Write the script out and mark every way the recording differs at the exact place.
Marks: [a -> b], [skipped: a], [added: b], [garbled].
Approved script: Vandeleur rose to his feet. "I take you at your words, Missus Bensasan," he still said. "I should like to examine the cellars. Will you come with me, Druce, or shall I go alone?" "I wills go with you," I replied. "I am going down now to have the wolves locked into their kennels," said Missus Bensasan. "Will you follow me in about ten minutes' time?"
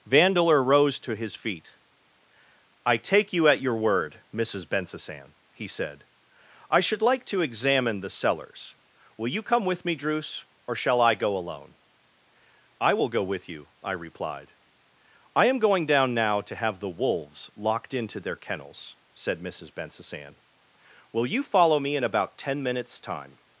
Vandeleur rose to his feet. "I take you at your [words, -> word] Missus Bensasan," he [skipped: still] said. "I should like to examine the cellars. Will you come with me, Druce, or shall I go alone?" "I [wills -> will] go with you," I replied. "I am going down now to have the wolves locked into their kennels," said Missus Bensasan. "Will you follow me in about ten minutes' time?"